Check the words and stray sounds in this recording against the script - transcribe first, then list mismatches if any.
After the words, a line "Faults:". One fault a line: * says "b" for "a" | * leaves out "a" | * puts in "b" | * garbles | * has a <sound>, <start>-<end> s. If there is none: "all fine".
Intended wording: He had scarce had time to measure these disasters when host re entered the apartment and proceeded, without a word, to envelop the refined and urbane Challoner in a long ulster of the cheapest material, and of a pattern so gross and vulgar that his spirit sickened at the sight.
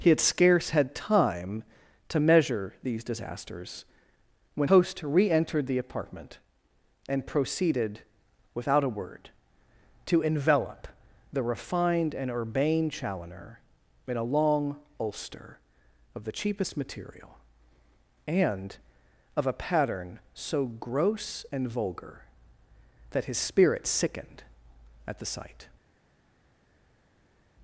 He had scarce had time to measure these disasters when host re entered the apartment and proceeded, without a word, to envelop the refined and urbane Challoner in a long ulster of the cheapest material, and of a pattern so gross and vulgar that his spirit sickened at the sight.
Faults:
all fine